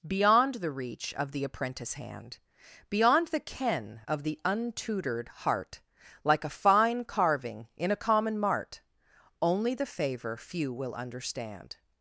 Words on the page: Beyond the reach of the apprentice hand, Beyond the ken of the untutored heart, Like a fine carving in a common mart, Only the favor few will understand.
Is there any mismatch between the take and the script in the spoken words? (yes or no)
no